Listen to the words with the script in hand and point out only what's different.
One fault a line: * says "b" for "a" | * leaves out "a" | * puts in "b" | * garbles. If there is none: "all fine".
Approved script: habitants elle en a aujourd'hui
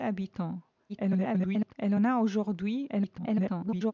* garbles
* garbles